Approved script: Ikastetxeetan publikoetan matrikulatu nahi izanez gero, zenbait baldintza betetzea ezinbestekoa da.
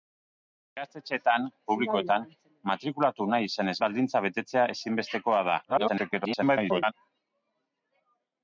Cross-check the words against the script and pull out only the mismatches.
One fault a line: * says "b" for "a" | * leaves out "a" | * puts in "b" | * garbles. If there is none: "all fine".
* leaves out "gero zenbait"
* garbles